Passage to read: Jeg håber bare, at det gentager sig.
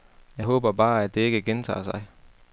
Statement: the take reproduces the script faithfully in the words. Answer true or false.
false